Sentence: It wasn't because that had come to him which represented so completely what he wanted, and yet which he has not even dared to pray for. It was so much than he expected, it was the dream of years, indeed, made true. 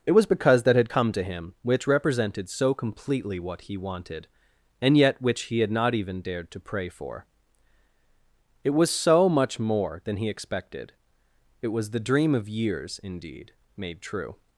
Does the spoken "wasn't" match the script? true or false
false